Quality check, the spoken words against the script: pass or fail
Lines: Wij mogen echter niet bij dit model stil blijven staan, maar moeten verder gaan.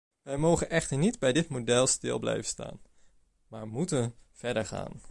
pass